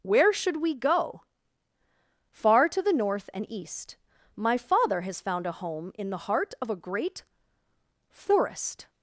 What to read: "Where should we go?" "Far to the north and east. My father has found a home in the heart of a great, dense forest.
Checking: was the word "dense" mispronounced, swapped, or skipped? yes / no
yes